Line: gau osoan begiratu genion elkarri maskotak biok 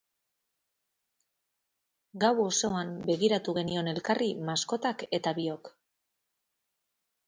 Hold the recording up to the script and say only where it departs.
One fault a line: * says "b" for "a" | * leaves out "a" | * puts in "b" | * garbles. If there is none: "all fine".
* puts in "eta"